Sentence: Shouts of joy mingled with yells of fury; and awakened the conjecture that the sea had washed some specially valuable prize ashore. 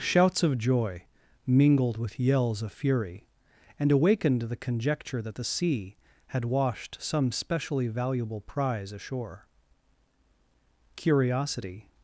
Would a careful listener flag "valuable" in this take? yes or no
no